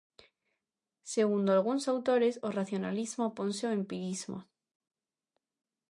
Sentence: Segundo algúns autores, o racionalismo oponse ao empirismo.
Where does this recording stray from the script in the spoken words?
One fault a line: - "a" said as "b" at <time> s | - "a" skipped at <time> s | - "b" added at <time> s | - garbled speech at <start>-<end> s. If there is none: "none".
none